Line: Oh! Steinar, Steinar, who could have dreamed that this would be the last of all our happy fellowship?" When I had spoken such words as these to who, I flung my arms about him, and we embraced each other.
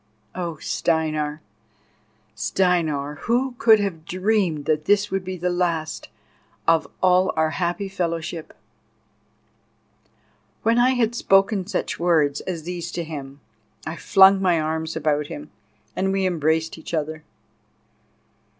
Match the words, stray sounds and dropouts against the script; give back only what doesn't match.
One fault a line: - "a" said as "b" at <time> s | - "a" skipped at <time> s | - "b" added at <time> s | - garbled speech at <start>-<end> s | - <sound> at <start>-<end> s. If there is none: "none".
- "who" said as "him" at 13.0 s